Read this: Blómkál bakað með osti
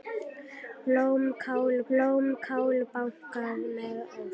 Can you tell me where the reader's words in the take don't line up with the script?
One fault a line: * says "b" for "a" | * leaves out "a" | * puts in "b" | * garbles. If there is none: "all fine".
* puts in "blómkál"